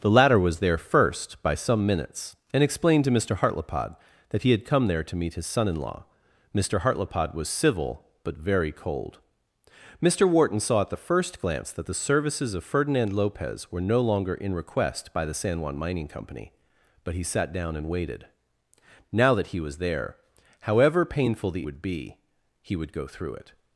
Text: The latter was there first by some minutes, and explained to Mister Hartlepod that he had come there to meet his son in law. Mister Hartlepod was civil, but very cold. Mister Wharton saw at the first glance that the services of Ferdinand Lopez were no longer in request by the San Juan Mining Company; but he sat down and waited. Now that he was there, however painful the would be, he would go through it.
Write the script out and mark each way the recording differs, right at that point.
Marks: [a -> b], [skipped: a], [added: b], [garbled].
The latter was there first by some minutes, and explained to Mister Hartlepod that he had come there to meet his son in law. Mister Hartlepod was civil, but very cold. Mister Wharton saw at the first glance that the services of Ferdinand Lopez were no longer in request by the San Juan Mining Company; but he sat down and waited. Now that he was there, however painful the would be, he would go through it.